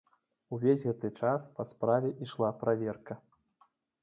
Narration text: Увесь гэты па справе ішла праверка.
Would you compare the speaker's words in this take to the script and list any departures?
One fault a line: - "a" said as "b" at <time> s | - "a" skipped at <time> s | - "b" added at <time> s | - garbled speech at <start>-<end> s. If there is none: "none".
- "час" added at 1.2 s